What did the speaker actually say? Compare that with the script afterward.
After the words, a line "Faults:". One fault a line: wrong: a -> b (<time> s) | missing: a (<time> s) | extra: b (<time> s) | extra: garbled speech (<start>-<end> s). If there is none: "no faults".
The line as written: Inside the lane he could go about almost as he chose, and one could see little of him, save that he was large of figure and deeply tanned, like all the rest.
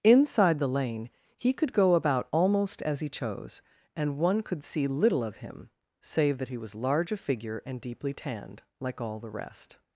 Inside the lane he could go about almost as he chose, and one could see little of him, save that he was large of figure and deeply tanned, like all the rest.
Faults:
no faults